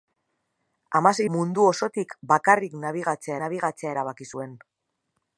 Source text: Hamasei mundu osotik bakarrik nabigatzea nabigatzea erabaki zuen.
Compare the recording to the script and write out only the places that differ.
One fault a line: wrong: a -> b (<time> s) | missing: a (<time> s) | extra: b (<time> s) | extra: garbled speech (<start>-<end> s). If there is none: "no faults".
no faults